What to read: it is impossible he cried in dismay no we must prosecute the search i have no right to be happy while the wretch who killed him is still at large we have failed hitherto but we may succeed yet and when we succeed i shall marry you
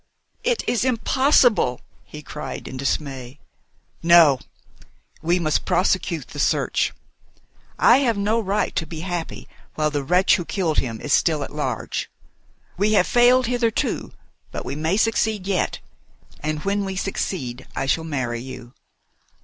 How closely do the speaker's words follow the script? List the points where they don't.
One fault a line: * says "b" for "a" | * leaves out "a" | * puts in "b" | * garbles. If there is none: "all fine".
all fine